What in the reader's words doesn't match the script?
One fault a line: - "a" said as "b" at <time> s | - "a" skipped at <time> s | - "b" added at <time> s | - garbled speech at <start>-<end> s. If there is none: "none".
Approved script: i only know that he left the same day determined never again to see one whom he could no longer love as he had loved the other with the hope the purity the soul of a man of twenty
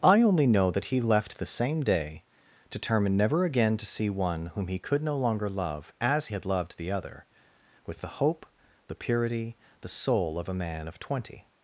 - "he" skipped at 6.3 s